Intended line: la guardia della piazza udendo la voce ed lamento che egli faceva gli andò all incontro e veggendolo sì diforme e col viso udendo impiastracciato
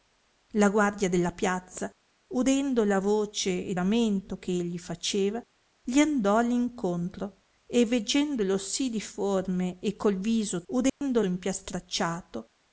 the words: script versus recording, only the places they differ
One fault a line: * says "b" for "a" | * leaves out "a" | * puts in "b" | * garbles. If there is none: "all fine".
all fine